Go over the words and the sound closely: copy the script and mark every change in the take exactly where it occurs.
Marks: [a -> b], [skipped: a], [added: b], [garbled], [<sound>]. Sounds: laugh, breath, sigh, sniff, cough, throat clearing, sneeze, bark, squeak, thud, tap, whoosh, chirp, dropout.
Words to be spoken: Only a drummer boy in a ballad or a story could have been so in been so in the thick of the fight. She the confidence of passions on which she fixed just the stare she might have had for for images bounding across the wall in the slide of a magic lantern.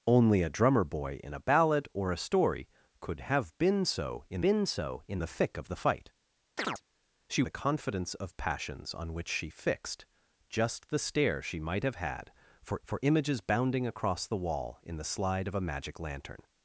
Only a drummer boy in a ballad or a story could have been so in been so in the thick of the fight. [chirp] She the confidence of passions on which she fixed just the stare she might have had for for images bounding across the wall in the slide of a magic lantern.